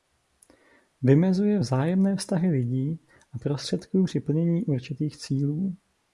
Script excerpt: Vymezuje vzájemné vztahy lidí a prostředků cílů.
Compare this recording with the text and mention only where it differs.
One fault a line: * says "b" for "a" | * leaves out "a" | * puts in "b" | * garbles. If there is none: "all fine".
* puts in "při plnění určitých"